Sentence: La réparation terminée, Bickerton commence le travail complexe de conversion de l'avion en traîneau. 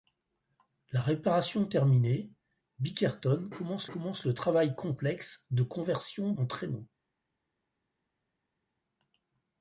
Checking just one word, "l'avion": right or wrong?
wrong